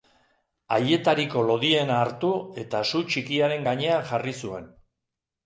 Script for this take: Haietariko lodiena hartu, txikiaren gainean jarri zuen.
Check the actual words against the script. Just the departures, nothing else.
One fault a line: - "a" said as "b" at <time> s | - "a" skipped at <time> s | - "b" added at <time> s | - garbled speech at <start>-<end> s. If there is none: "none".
- "eta su" added at 2.6 s